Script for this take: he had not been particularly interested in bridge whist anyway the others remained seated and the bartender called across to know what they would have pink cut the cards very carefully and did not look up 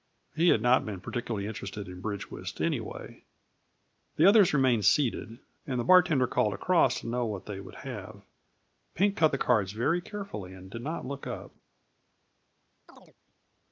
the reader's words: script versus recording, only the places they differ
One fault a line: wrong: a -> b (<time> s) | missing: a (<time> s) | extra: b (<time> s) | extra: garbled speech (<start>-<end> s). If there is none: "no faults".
no faults